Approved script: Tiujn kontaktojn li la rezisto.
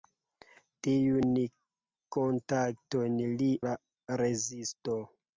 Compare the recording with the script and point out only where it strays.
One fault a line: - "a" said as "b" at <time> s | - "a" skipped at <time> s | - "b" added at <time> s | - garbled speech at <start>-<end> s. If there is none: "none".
none